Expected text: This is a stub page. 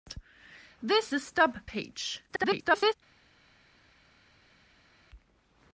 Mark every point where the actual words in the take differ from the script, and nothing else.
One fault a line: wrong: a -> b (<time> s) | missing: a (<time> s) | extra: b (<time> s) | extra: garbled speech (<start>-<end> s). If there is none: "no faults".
missing: is (1.1 s)
extra: garbled speech (2.3-2.9 s)